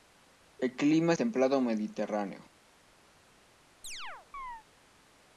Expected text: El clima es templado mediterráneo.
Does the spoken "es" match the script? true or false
false